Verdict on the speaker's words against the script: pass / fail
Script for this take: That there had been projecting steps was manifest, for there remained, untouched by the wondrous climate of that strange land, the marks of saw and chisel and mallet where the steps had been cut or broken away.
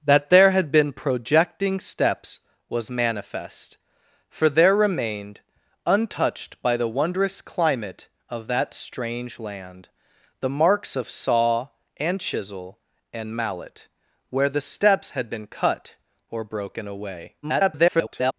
fail